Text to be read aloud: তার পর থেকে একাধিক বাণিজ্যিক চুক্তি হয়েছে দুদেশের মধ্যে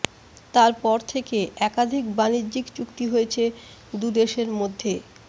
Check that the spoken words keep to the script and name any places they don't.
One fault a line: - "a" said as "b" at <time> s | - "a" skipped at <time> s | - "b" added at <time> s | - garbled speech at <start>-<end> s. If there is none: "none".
none